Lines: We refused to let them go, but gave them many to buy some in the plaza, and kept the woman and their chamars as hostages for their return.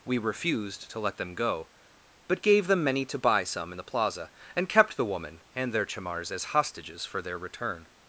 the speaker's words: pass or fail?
pass